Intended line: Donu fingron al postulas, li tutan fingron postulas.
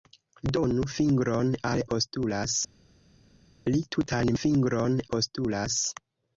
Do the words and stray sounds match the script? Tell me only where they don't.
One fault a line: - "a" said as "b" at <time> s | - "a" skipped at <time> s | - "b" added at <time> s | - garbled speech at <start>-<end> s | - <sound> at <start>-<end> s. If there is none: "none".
none